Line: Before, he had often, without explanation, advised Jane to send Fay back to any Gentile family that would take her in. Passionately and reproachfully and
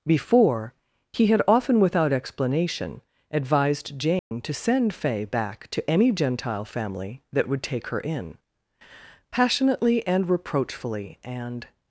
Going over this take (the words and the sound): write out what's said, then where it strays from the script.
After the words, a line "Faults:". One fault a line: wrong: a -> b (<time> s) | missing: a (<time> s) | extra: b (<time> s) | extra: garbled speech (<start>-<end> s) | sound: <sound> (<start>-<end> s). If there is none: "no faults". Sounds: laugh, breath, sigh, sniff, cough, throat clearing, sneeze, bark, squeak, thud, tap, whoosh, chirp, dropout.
Before, he had often, without explanation, advised Jane to send Fay back to any Gentile family that would take her in. Passionately and reproachfully and
Faults:
sound: dropout (4.2-4.3 s)